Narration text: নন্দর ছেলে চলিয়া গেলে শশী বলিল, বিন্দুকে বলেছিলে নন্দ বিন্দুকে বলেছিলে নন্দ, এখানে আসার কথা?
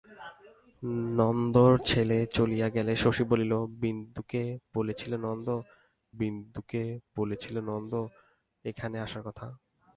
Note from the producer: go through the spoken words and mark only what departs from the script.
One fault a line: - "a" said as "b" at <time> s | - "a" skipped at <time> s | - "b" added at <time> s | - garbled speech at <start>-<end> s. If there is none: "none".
none